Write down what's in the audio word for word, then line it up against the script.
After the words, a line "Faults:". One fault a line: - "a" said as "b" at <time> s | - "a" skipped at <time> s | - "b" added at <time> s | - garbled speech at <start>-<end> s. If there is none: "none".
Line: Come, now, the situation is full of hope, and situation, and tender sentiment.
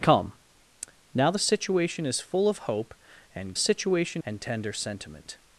Come, now, the situation is full of hope, and situation, and tender sentiment.
Faults:
none